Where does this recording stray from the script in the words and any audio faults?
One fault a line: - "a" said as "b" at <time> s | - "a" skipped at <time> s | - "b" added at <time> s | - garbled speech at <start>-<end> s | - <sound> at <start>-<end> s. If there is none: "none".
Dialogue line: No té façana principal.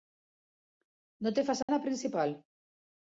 - dropout at 1.6-1.7 s